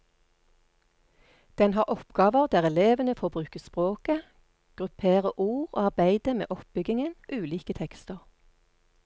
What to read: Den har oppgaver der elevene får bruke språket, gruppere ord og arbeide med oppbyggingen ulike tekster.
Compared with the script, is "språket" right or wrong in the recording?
right